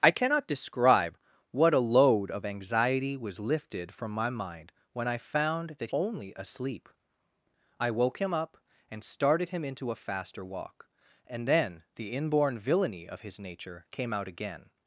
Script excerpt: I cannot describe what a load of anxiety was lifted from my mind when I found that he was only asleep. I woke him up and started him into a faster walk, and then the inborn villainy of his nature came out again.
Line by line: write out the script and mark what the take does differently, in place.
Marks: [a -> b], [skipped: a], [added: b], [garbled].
I cannot describe what a load of anxiety was lifted from my mind when I found that [skipped: he was] only asleep. I woke him up and started him into a faster walk, and then the inborn villainy of his nature came out again.